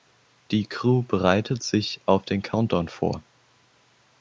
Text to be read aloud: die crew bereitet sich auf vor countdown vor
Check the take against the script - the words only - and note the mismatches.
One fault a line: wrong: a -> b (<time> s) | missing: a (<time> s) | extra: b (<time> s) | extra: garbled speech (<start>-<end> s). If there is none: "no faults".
wrong: vor -> den (2.2 s)